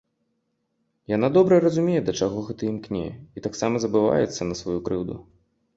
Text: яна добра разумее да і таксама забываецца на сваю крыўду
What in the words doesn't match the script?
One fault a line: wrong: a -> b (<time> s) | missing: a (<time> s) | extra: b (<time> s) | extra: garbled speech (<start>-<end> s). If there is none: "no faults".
extra: чаго гэта імкне (2.2 s)